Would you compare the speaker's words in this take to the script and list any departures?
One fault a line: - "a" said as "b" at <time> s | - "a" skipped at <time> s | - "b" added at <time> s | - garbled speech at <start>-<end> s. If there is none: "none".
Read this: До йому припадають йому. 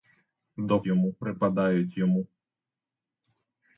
none